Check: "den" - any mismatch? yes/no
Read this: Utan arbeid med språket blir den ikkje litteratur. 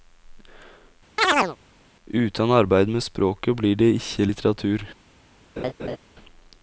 yes